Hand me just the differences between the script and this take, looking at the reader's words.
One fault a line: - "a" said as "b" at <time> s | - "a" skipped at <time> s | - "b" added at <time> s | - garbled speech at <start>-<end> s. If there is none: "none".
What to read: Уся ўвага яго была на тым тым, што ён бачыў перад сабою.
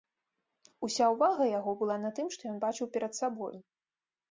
- "тым" skipped at 2.3 s